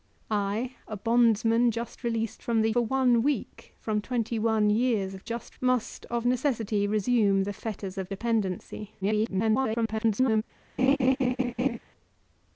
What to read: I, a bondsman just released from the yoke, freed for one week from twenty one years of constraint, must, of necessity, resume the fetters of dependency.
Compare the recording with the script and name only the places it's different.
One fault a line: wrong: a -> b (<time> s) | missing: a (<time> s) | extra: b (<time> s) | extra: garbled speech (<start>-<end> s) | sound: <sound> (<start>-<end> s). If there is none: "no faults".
missing: yoke freed (2.7 s)
wrong: constraint -> just (5.2 s)
extra: garbled speech (9.0-10.4 s)
sound: laugh (10.8-11.8 s)